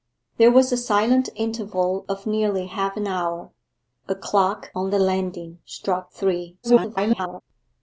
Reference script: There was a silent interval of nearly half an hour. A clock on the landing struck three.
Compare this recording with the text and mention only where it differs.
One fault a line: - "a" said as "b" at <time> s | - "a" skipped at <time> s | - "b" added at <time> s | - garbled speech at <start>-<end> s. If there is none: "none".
- garbled speech at 6.6-7.4 s